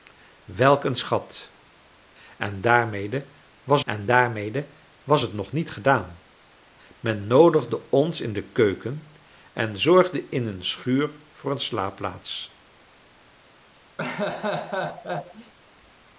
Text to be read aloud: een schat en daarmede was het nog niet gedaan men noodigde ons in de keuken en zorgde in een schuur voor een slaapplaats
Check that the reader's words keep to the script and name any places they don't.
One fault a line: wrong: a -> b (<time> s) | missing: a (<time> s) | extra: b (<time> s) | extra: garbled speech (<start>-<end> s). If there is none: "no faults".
extra: en daarmede was (3.8 s)